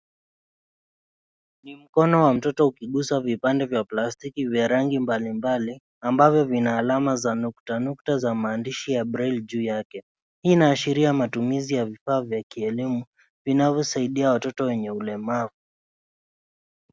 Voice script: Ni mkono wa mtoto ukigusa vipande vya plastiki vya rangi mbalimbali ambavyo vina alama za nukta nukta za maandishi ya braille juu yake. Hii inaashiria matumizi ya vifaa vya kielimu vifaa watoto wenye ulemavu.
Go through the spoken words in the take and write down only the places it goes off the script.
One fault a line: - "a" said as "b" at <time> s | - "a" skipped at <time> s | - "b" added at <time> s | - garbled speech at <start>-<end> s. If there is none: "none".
- "vifaa" said as "vinavyosaidia" at 13.4 s